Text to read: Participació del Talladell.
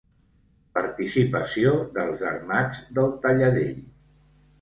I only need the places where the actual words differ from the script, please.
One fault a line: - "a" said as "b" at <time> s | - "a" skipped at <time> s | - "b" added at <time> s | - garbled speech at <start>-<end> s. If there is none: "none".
- "dels Armats" added at 2.0 s